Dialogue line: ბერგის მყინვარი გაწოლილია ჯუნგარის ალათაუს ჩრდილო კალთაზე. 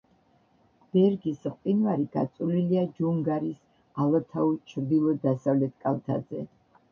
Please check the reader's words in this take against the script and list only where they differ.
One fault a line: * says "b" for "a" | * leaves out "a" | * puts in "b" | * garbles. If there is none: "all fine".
* puts in "დასავლეთ"